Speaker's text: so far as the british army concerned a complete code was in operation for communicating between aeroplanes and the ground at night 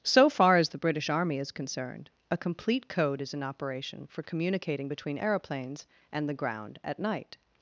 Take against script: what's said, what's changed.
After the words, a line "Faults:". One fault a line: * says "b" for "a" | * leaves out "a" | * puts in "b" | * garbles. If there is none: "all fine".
so far as the british army is concerned a complete code is in operation for communicating between aeroplanes and the ground at night
Faults:
* puts in "is"
* says "is" for "was"